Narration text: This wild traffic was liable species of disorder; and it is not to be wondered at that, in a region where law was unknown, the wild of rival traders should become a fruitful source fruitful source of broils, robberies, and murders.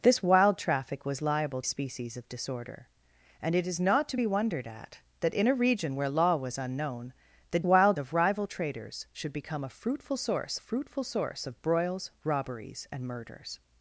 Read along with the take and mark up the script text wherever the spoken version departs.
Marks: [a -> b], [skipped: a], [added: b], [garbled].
This wild traffic was liable species of disorder; and it is not to be wondered at that, in a region where law was unknown, the wild of rival traders should become a fruitful source fruitful source of broils, robberies, and murders.